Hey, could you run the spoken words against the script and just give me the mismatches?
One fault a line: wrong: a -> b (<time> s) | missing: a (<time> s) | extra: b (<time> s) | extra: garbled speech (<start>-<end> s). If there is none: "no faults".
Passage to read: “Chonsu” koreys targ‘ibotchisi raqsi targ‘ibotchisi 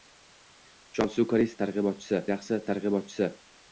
no faults